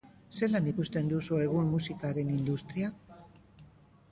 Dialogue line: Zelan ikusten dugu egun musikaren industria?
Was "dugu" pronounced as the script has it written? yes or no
no